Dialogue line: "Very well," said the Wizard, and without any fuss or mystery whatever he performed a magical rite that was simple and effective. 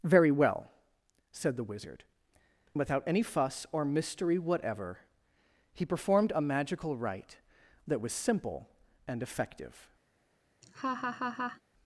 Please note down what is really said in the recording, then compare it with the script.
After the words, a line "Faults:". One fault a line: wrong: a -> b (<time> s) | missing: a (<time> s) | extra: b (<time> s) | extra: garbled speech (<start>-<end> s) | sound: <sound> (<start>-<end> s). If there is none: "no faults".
"Very well," said the Wizard, without any fuss or mystery whatever he performed a magical rite that was simple and effective.
Faults:
missing: and (2.0 s)
sound: laugh (10.6-11.6 s)